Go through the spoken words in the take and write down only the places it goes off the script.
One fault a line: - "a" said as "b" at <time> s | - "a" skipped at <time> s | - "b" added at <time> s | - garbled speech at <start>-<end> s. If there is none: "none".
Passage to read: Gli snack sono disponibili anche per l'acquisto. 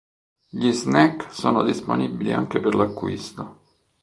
none